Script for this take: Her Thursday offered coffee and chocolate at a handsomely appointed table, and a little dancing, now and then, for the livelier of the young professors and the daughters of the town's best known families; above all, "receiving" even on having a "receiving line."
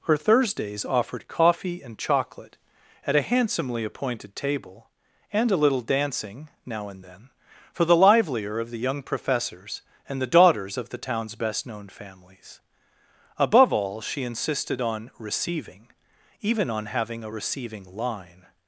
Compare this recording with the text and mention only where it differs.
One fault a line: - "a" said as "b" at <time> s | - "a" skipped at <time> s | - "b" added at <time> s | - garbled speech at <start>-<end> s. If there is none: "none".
- "Thursday" said as "Thursdays" at 0.2 s
- "she insisted on" added at 14.0 s